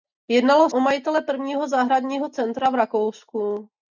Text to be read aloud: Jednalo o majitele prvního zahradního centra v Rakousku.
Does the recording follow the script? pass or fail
pass